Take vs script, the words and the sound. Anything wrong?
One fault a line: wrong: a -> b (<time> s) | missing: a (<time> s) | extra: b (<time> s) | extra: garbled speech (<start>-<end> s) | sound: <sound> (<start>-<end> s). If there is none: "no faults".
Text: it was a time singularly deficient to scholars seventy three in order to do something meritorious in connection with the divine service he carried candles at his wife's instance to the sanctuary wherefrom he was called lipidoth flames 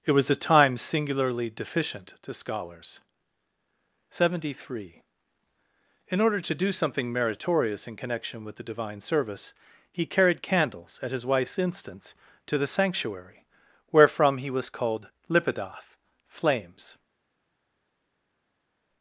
no faults